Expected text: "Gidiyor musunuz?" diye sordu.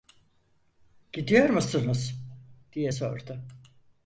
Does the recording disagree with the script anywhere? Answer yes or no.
no